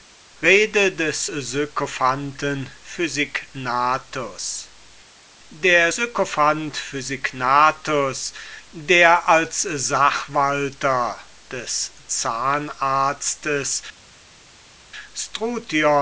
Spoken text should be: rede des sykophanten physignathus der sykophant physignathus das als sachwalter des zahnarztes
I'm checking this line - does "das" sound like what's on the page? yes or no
no